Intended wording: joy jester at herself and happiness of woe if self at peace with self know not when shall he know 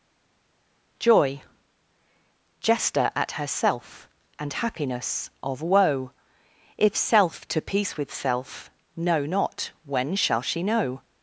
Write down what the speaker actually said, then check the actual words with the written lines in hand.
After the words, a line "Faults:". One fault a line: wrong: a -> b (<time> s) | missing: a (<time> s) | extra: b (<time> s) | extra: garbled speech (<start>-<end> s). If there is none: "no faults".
joy jester at herself and happiness of woe if self to peace with self know not when shall she know
Faults:
wrong: at -> to (7.5 s)
wrong: he -> she (10.4 s)